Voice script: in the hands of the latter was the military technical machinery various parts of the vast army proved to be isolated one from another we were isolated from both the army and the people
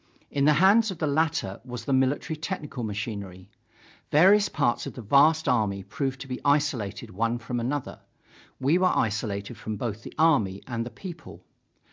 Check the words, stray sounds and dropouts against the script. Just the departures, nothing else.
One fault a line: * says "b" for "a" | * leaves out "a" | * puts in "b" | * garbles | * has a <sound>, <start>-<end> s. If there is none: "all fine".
all fine